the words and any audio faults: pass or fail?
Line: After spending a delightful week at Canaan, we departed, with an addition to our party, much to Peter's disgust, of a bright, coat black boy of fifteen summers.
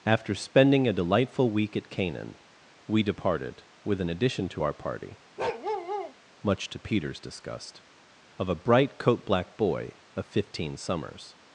fail